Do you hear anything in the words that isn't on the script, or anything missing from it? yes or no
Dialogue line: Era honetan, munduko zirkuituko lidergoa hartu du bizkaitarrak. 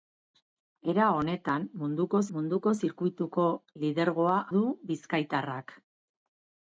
yes